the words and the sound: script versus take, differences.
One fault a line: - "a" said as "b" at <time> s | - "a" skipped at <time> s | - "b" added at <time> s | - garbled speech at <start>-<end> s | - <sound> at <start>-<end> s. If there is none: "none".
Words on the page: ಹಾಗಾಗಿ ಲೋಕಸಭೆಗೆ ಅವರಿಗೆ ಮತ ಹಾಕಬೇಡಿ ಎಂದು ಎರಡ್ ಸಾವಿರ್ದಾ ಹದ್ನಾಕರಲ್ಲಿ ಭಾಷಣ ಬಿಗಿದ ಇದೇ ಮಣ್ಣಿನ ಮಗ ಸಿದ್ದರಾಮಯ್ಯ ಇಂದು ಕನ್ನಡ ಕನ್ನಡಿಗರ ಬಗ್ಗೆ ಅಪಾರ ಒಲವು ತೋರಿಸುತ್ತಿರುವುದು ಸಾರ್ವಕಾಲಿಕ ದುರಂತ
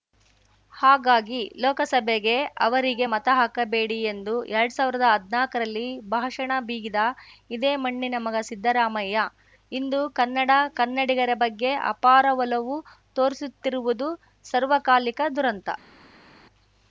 none